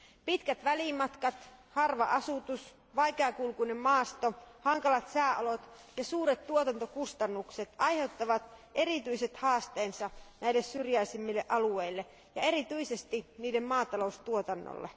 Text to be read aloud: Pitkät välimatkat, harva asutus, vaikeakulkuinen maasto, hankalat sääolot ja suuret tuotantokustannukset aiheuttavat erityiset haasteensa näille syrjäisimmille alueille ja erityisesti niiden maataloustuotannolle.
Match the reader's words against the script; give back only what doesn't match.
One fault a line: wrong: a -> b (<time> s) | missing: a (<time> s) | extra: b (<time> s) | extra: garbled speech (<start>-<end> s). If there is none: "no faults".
no faults